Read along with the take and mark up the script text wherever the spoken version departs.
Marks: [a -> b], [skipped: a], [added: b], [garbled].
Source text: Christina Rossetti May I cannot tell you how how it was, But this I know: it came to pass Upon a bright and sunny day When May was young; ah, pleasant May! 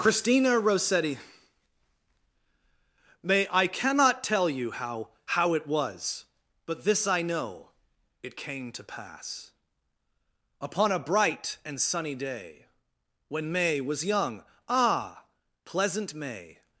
Christina Rossetti May I cannot tell you how how it was, But this I know: it came to pass Upon a bright and sunny day When May was young; ah, pleasant May!